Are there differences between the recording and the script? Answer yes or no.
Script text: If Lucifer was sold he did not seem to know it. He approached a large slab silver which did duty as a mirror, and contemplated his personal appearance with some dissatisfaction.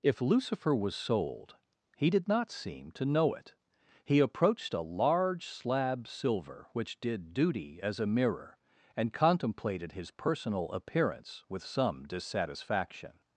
no